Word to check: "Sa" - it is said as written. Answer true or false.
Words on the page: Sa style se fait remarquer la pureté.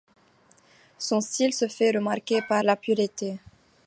false